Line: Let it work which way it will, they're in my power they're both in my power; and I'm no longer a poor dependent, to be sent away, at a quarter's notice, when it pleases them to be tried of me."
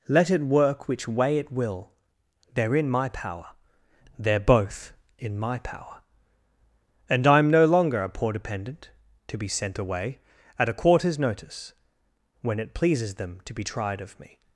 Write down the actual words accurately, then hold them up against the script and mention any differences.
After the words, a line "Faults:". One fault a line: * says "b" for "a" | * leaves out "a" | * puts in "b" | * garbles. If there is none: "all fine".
Let it work which way it will, they're in my power they're both in my power; and I'm no longer a poor dependent, to be sent away, at a quarter's notice, when it pleases them to be tried of me."
Faults:
all fine